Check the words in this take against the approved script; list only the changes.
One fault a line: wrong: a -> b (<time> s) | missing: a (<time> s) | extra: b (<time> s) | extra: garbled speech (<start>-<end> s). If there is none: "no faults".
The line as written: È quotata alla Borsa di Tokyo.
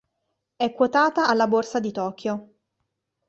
no faults